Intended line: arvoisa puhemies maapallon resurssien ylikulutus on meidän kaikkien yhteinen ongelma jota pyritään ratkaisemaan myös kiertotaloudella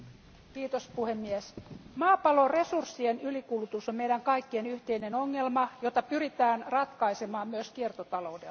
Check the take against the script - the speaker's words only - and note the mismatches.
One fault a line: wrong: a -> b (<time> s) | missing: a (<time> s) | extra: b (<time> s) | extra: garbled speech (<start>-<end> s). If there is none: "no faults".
no faults